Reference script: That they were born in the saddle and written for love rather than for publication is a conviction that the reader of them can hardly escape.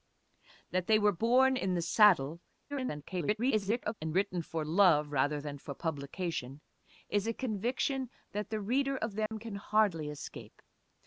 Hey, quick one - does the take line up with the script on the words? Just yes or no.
no